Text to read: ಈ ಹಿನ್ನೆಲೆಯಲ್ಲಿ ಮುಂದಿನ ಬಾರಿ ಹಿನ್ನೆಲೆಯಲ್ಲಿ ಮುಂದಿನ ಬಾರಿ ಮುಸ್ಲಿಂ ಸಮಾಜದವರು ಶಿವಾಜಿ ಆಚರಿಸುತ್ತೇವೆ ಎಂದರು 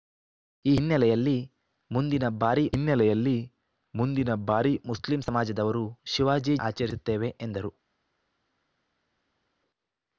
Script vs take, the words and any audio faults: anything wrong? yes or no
no